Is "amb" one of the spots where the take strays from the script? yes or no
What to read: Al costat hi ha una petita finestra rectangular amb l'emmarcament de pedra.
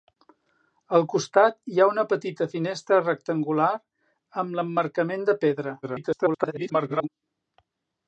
no